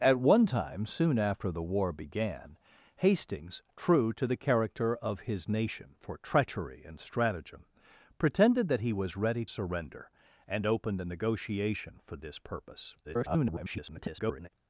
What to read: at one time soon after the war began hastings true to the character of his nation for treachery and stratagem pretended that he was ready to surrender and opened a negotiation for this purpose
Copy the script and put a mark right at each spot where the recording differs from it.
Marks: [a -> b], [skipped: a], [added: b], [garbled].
at one time soon after the war began hastings true to the character of his nation for treachery and stratagem pretended that he was ready [skipped: to] surrender and opened a negotiation for this purpose [garbled]